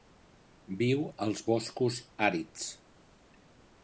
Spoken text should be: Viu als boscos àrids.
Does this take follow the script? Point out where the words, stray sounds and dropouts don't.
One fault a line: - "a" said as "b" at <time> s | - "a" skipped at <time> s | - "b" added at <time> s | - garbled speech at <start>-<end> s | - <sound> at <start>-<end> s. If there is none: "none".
none